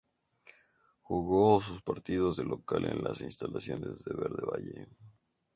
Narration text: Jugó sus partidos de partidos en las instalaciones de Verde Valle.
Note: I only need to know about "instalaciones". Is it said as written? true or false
true